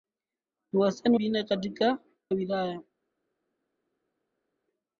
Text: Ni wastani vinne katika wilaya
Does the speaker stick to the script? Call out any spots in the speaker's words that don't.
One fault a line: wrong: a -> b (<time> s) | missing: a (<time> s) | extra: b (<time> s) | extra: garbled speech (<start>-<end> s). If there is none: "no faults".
no faults